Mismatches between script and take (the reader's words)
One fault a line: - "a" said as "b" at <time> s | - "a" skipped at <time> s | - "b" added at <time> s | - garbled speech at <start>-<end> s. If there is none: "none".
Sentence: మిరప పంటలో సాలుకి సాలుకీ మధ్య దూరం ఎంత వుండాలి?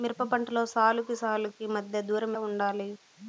- "ఎంత" skipped at 2.3 s